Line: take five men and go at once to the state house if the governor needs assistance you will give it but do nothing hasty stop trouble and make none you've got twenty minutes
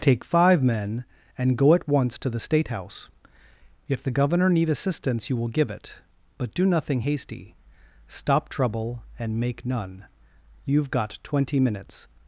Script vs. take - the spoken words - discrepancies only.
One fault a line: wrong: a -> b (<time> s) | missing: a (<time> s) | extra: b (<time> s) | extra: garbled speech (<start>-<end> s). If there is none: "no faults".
wrong: needs -> need (4.5 s)